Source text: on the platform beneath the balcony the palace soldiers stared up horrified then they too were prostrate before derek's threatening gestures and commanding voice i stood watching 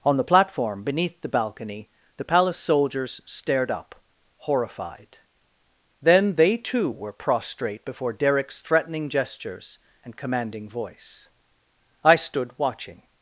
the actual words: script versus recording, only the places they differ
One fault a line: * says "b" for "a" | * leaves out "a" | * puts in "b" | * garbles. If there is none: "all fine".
all fine